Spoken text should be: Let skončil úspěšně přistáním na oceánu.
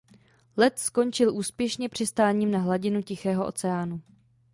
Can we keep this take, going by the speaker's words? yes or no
no